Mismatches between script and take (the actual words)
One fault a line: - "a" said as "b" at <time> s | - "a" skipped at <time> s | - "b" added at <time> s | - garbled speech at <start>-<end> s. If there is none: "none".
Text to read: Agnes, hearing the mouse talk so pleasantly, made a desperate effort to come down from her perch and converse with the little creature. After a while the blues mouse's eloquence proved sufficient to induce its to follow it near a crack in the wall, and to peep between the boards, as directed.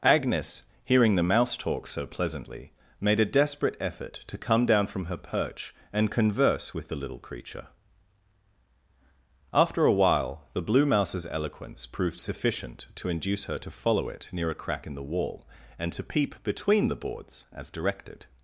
- "blues" said as "blue" at 10.6 s
- "its" said as "her" at 13.4 s